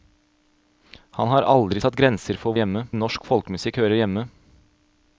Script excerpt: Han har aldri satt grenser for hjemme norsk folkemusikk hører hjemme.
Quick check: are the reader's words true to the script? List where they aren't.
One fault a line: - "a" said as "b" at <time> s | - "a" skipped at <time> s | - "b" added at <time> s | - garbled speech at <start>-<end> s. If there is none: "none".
none